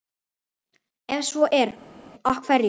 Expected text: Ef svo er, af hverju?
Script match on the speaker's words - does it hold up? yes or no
yes